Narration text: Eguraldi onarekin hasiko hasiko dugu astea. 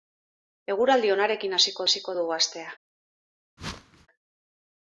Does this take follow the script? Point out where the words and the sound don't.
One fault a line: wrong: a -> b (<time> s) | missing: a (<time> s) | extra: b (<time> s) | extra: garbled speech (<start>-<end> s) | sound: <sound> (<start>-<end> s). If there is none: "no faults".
sound: whoosh (3.6-4.1 s)